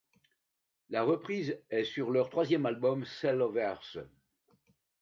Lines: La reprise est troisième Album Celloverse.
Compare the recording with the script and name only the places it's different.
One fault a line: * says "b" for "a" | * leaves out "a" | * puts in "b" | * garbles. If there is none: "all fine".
* puts in "sur leur"